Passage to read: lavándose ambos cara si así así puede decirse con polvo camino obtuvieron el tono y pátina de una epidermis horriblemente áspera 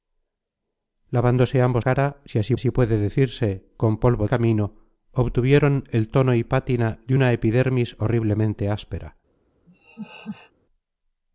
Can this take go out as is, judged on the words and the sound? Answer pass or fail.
fail